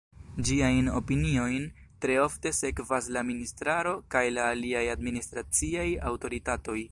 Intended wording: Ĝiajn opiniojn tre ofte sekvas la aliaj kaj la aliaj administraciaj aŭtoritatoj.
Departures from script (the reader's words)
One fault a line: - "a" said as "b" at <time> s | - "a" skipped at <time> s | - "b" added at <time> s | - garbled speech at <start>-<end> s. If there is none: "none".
- "aliaj" said as "ministraro" at 3.3 s